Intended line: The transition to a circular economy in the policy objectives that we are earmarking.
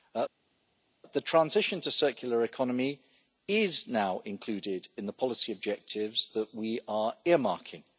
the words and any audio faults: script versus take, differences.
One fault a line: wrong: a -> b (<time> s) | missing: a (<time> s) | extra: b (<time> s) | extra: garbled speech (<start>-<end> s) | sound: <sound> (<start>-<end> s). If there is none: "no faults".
extra: is now included (3.5 s)